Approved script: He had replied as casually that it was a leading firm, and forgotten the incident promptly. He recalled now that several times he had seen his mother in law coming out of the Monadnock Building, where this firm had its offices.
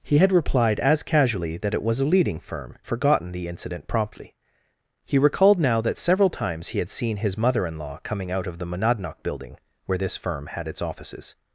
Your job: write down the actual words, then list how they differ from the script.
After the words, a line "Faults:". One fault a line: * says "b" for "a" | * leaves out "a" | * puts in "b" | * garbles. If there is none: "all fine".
He had replied as casually that it was a leading firm, forgotten the incident promptly. He recalled now that several times he had seen his mother in law coming out of the Monadnock Building, where this firm had its offices.
Faults:
* leaves out "and"